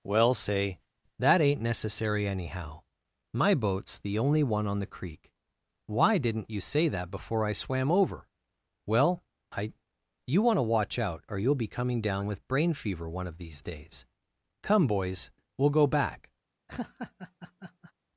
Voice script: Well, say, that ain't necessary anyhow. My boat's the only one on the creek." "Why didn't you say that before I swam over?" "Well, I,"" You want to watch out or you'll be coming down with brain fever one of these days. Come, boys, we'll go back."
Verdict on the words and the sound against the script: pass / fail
fail